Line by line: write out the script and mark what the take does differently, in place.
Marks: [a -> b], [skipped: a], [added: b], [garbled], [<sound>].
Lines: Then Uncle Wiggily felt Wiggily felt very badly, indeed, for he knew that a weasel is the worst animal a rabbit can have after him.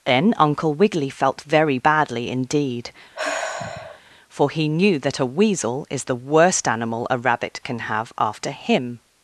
Then Uncle Wiggily felt [skipped: Wiggily felt] very badly, indeed, [sigh] for he knew that a weasel is the worst animal a rabbit can have after him.